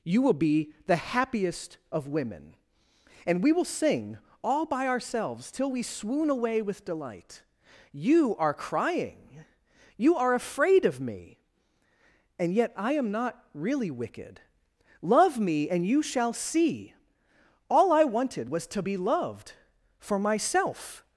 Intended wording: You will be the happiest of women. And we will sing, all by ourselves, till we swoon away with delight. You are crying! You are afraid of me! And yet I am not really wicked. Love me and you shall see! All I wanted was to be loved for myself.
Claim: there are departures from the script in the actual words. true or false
false